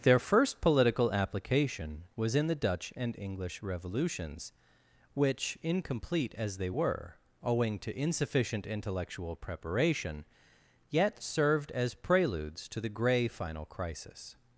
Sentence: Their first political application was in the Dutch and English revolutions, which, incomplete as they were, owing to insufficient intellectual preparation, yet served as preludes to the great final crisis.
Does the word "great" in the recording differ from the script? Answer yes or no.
yes